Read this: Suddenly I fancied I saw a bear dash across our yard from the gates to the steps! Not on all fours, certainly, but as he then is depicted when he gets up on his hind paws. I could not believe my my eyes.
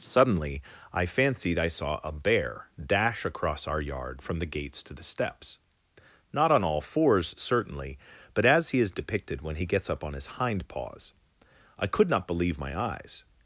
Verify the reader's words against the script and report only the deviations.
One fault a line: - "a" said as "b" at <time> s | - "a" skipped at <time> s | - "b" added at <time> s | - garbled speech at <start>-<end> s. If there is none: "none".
- "then" skipped at 8.8 s
- "my" skipped at 12.8 s